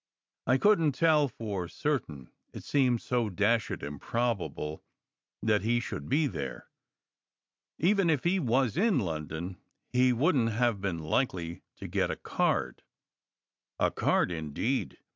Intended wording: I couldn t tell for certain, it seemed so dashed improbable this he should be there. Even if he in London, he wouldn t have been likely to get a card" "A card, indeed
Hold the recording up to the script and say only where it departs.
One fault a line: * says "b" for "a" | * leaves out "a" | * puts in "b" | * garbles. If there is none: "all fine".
* says "that" for "this"
* puts in "was"